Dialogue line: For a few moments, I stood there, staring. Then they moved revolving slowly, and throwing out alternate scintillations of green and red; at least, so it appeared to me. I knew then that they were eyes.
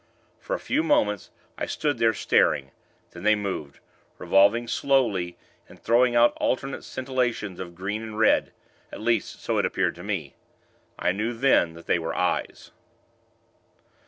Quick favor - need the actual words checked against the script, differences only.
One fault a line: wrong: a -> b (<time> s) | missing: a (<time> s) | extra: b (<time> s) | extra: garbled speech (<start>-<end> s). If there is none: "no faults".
no faults